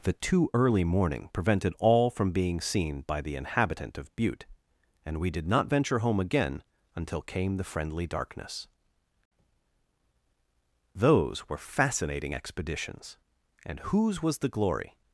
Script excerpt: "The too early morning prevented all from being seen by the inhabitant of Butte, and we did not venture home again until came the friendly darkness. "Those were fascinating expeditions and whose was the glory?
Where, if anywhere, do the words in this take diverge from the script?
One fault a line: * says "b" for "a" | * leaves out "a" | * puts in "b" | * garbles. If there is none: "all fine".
all fine